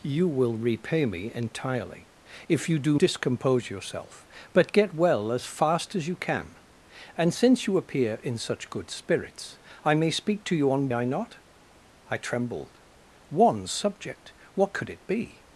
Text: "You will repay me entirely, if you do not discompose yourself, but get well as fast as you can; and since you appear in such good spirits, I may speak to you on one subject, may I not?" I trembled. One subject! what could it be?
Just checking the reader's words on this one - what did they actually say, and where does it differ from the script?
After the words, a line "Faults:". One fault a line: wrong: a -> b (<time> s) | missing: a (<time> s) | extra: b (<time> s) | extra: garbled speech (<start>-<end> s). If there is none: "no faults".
"You will repay me entirely, if you do discompose yourself, but get well as fast as you can; and since you appear in such good spirits, I may speak to you on I not?" I trembled. One subject! what could it be?
Faults:
missing: not (3.0 s)
missing: one subject may (10.9 s)